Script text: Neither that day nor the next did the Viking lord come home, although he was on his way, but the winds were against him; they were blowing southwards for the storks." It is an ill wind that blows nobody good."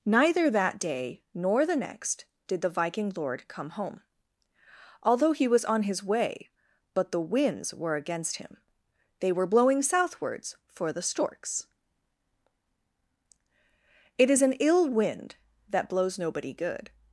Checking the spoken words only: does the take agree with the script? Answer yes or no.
yes